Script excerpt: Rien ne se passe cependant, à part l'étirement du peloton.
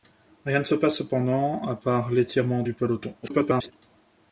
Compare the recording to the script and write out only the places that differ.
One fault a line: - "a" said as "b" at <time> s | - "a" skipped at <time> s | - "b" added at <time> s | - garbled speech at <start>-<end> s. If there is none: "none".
- garbled speech at 3.2-3.7 s